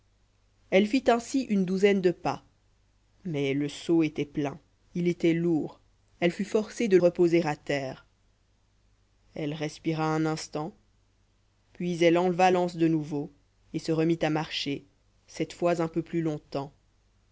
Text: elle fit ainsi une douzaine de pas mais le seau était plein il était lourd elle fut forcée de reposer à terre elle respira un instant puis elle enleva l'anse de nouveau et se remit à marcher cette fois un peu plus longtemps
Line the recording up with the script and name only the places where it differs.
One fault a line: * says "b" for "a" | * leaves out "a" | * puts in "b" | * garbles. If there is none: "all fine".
all fine